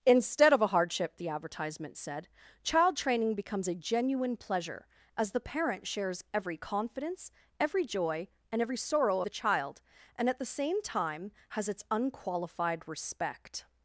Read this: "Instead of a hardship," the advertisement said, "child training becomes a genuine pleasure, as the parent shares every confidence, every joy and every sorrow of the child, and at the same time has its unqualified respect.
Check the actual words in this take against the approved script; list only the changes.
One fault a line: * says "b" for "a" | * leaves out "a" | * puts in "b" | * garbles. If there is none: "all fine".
* leaves out "of"